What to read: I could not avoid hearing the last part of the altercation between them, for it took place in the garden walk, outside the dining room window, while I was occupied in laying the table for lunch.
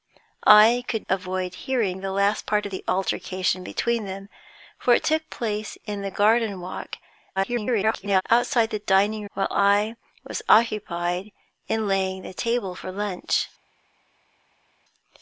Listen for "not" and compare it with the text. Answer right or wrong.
wrong